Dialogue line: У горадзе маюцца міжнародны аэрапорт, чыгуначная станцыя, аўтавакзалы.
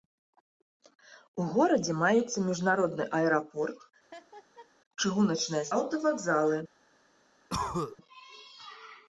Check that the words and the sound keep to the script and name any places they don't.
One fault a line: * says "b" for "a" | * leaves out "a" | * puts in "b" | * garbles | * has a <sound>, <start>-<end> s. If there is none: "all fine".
* has a laugh, 4.1-4.7 s
* leaves out "станцыя"
* has a cough, 7.5-8.0 s